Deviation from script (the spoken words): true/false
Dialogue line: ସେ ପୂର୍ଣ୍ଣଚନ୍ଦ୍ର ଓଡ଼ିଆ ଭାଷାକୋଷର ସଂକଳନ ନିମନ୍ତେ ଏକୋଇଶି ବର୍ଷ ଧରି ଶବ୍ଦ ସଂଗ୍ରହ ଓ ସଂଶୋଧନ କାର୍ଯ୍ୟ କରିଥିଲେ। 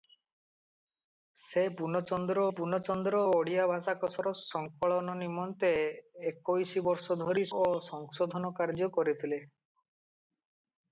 true